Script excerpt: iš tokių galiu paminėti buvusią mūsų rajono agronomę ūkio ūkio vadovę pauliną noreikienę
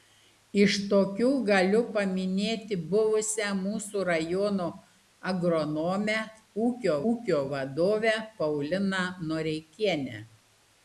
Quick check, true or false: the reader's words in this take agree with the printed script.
true